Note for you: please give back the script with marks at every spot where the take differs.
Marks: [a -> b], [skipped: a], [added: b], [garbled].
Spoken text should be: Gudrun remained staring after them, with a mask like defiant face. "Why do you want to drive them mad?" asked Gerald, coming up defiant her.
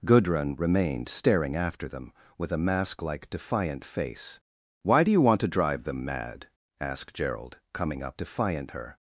Gudrun remained staring after them, with a mask like defiant face. "Why do you want to drive them mad?" asked Gerald, coming up defiant her.